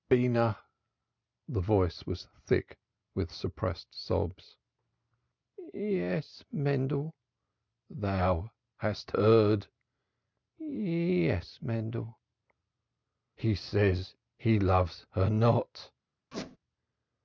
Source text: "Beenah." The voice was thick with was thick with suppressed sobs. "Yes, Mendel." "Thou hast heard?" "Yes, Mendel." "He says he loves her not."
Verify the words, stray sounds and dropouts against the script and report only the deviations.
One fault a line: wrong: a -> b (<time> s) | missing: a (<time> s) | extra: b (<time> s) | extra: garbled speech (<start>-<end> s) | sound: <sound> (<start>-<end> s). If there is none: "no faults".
missing: was thick with (3.3 s)
sound: squeak (16.3-16.6 s)